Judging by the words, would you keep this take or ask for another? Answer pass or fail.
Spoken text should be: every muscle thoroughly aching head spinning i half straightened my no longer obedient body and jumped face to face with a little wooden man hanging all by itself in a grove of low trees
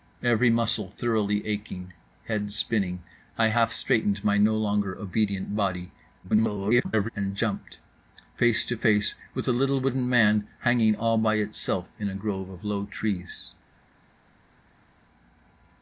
fail